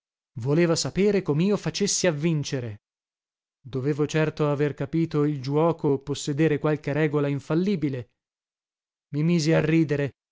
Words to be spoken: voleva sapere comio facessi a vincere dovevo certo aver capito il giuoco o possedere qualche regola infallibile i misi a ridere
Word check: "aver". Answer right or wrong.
right